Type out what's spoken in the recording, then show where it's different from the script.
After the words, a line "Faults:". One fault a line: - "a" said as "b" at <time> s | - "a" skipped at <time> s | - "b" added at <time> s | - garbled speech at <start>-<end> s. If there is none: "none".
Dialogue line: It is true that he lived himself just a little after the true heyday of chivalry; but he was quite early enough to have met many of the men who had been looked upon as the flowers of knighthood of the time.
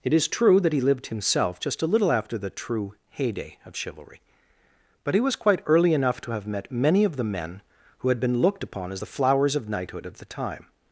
It is true that he lived himself just a little after the true heyday of chivalry; but he was quite early enough to have met many of the men who had been looked upon as the flowers of knighthood of the time.
Faults:
none